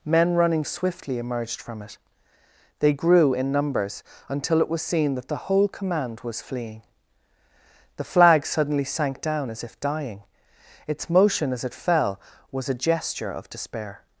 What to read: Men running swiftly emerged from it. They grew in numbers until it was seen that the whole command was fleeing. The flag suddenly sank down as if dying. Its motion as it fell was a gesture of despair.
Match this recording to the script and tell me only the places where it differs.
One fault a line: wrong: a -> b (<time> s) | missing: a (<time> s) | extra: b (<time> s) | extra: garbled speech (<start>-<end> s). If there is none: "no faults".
no faults